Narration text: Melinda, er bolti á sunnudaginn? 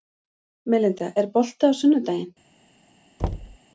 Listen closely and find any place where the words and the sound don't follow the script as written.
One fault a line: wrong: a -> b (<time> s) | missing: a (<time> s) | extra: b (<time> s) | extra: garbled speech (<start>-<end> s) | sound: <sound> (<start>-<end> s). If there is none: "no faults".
sound: thud (3.2-3.6 s)